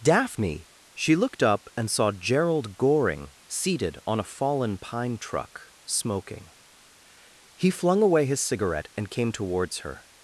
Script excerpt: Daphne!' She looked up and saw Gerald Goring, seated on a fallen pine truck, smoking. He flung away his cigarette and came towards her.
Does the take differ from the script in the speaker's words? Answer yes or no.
no